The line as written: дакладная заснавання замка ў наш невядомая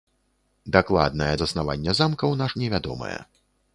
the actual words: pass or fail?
pass